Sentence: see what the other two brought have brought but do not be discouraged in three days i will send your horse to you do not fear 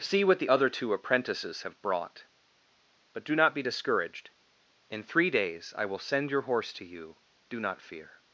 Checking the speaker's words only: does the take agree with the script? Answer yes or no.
no